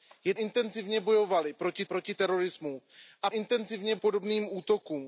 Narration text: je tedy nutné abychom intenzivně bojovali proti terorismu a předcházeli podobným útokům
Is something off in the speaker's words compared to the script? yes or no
yes